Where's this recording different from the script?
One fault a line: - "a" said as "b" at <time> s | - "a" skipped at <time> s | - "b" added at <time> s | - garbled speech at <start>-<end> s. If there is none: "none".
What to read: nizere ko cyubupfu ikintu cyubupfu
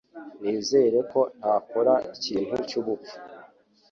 - "cyubupfu" said as "ntakora" at 1.4 s